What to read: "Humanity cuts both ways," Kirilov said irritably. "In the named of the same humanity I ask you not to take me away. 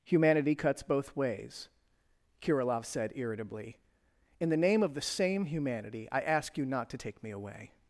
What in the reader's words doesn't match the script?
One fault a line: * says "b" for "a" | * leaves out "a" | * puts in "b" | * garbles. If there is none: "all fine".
* says "name" for "named"